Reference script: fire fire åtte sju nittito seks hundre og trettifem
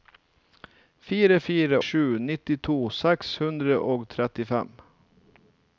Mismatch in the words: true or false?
true